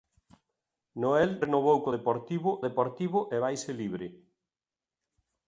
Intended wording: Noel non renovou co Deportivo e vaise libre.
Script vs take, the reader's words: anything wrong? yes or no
yes